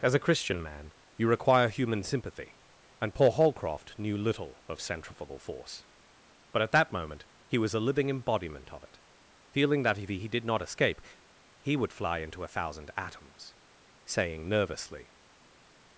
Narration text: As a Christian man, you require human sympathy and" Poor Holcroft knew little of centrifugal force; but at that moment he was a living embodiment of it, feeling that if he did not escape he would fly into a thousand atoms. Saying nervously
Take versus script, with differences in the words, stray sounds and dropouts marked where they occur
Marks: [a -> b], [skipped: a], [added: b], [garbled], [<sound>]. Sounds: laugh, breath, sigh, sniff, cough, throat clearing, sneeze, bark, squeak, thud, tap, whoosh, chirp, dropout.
As a Christian man, you require human sympathy and" Poor Holcroft knew little of centrifugal force; but at that moment he was a living embodiment of it, feeling that if he did not escape he would fly into a thousand atoms. Saying nervously